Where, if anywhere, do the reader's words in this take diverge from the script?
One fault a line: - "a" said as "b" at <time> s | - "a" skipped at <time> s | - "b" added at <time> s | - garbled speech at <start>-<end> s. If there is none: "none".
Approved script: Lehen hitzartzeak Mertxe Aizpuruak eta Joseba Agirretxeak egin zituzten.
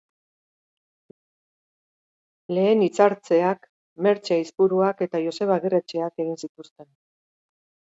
none